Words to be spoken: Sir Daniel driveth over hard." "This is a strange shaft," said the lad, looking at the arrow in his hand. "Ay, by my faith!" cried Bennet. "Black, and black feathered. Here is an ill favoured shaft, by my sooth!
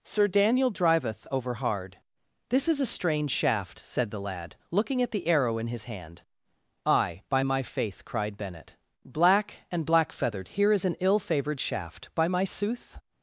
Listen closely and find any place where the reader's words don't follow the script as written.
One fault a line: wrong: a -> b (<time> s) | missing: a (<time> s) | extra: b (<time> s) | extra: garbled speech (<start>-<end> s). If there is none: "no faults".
no faults